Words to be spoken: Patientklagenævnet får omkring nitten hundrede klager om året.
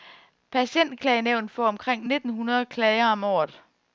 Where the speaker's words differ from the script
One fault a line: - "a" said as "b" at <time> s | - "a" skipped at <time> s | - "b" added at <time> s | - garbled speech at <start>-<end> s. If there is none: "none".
none